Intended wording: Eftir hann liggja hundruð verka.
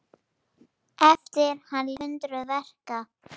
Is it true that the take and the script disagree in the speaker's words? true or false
true